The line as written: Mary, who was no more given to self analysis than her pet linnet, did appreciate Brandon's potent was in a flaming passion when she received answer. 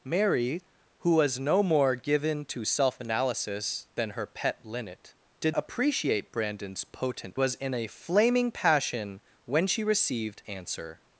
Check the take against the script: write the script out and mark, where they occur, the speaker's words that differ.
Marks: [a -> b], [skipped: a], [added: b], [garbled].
Mary, who was no more given to self analysis than her pet linnet, did appreciate Brandon's potent was in a flaming passion when she received answer.